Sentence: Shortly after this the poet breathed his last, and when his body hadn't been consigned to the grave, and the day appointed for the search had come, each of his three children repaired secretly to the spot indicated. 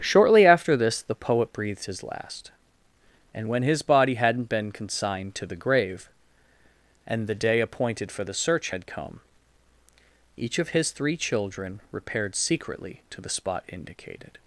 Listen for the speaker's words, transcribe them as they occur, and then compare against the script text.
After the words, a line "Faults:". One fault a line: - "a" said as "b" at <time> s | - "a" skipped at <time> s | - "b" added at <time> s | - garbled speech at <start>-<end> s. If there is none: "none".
Shortly after this the poet breathed his last, and when his body hadn't been consigned to the grave, and the day appointed for the search had come, each of his three children repaired secretly to the spot indicated.
Faults:
none